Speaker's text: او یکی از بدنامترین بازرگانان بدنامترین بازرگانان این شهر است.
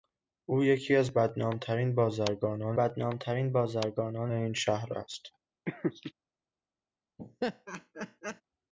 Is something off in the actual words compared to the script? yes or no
no